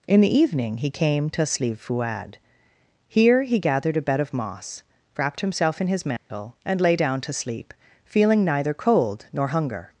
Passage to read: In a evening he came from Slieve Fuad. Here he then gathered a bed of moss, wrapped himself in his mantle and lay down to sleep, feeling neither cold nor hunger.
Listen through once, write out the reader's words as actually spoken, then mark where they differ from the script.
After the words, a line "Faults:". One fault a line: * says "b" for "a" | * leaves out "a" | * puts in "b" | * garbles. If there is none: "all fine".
In the evening he came to Slieve Fuad. Here he gathered a bed of moss, wrapped himself in his mantle and lay down to sleep, feeling neither cold nor hunger.
Faults:
* says "the" for "a"
* says "to" for "from"
* leaves out "then"